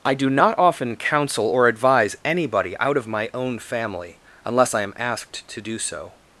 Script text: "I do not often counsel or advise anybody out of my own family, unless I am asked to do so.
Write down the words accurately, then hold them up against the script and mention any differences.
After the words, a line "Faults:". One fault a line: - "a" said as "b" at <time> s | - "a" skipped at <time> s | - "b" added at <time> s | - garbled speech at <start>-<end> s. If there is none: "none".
"I do not often counsel or advise anybody out of my own family, unless I am asked to do so.
Faults:
none